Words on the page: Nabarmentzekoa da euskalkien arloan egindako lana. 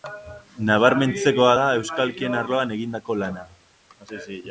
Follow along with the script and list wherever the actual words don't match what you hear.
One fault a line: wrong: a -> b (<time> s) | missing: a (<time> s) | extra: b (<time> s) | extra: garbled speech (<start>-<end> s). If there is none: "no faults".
no faults